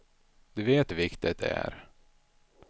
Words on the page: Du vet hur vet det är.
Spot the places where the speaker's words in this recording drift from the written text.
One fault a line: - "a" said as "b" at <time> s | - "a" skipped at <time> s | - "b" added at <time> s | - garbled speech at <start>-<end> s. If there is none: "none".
- "vet" said as "viktigt" at 0.9 s